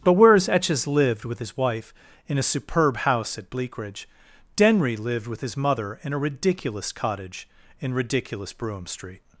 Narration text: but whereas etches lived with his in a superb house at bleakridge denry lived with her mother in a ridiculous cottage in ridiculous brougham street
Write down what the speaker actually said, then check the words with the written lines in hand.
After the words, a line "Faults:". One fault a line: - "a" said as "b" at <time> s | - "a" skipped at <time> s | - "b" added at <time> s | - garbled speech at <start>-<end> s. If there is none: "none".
but whereas etches lived with his wife in a superb house at bleakridge denry lived with his mother in a ridiculous cottage in ridiculous brougham street
Faults:
- "wife" added at 1.6 s
- "her" said as "his" at 5.4 s